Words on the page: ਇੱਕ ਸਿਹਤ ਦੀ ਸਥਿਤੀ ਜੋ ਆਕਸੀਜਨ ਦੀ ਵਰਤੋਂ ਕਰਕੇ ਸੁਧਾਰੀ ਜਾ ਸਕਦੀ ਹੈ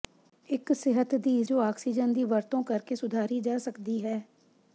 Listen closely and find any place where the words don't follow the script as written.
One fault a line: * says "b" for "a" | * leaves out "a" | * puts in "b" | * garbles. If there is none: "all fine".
* leaves out "ਸਥਿਤੀ"